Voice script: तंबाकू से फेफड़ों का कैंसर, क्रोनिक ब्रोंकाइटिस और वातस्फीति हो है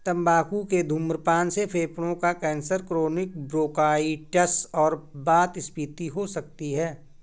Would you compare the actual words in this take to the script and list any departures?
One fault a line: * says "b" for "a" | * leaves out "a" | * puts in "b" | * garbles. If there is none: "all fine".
* puts in "के धूम्रपान"
* puts in "सकती"